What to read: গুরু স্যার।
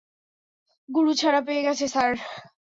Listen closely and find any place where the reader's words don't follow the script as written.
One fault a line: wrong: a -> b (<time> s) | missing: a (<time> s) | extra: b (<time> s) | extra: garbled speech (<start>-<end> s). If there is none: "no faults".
extra: ছাড়া পেয়ে গেছে (1.1 s)